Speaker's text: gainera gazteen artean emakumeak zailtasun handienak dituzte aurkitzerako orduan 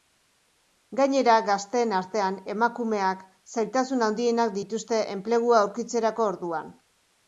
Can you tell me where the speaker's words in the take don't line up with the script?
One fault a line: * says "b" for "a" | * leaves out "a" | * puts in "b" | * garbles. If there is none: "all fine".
* puts in "enplegua"